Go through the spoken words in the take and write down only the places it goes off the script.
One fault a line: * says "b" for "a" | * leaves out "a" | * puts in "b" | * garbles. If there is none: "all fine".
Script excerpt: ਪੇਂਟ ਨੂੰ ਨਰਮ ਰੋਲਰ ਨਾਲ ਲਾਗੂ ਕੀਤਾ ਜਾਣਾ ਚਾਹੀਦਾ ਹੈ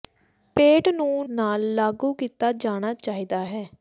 * leaves out "ਨਰਮ ਰੋਲਰ"